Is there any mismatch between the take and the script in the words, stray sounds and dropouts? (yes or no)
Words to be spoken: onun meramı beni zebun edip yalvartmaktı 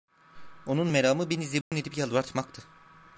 yes